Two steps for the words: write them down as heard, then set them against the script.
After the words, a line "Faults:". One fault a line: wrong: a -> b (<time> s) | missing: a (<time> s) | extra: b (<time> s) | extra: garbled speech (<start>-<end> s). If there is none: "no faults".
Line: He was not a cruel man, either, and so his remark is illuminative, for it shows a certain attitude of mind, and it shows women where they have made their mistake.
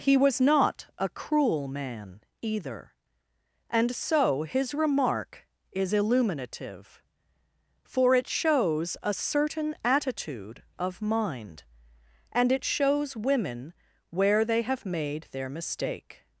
He was not a cruel man, either, and so his remark is illuminative, for it shows a certain attitude of mind, and it shows women where they have made their mistake.
Faults:
no faults